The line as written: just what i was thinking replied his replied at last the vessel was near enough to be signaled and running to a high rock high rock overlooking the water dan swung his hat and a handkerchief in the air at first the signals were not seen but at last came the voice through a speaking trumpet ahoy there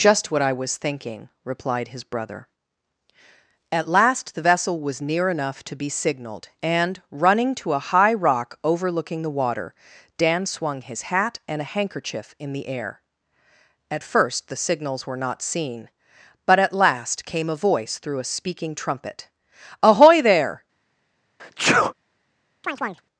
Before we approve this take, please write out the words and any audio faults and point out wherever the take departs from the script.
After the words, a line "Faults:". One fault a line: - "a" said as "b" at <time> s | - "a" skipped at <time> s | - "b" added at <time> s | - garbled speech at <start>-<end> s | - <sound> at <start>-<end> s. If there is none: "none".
just what i was thinking replied his brother at last the vessel was near enough to be signaled and running to a high rock overlooking the water dan swung his hat and a handkerchief in the air at first the signals were not seen but at last came a voice through a speaking trumpet ahoy there
Faults:
- "replied" said as "brother" at 2.0 s
- "high rock" skipped at 8.6 s
- "the" said as "a" at 17.5 s
- sneeze at 21.4-21.9 s
- chirp at 22.6-23.1 s